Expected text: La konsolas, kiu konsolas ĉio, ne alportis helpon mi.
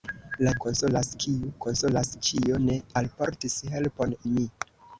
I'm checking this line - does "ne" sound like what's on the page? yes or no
yes